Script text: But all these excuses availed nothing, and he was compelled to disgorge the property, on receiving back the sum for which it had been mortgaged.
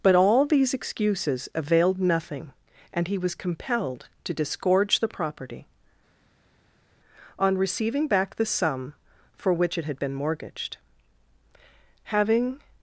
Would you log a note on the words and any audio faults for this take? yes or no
yes